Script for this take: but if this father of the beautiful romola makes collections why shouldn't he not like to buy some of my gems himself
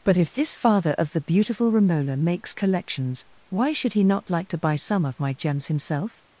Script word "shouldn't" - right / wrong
wrong